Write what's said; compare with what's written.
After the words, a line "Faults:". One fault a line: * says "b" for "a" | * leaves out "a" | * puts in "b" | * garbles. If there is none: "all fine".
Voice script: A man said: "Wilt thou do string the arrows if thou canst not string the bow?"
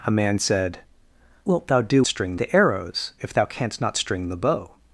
A man said: "Wilt thou do string the arrows if thou canst not string the bow?"
Faults:
all fine